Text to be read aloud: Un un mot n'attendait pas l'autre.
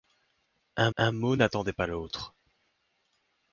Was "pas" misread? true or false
false